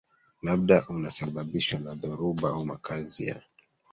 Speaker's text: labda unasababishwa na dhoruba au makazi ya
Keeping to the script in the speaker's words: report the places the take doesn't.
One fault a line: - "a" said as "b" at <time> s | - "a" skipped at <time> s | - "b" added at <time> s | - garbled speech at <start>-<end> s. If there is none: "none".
none